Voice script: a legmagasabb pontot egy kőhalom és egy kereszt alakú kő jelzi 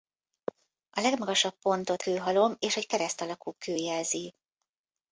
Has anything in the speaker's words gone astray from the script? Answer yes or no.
yes